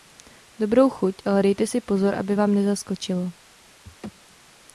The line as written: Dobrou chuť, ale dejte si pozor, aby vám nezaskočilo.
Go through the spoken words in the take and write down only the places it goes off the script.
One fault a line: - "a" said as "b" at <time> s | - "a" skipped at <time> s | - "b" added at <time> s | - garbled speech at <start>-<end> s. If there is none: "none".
none